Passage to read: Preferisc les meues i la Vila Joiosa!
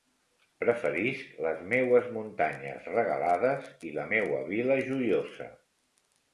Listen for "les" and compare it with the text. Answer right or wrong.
right